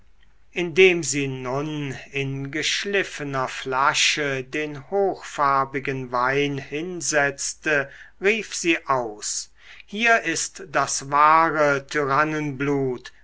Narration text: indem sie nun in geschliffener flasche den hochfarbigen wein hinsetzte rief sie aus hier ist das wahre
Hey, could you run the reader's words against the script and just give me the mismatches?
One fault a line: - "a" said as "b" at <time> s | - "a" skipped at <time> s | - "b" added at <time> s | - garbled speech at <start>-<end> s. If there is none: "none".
none